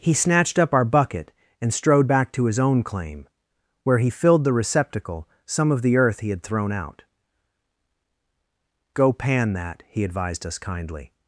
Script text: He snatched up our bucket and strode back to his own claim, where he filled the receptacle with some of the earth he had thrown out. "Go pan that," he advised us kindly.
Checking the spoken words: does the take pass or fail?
fail